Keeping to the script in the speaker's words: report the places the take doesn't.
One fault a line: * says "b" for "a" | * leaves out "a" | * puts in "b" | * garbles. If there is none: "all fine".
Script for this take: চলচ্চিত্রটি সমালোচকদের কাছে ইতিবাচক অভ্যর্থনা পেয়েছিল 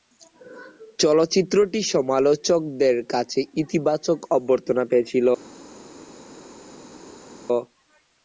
all fine